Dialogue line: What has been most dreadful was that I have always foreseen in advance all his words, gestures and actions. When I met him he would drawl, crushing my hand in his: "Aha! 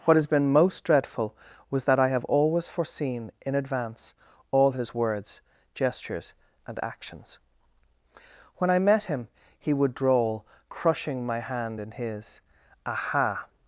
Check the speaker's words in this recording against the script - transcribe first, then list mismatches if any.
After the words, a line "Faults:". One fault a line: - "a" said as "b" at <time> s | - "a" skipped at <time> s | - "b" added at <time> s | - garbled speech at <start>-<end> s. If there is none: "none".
What has been most dreadful was that I have always foreseen in advance all his words, gestures and actions. When I met him he would drawl, crushing my hand in his: "Aha!
Faults:
none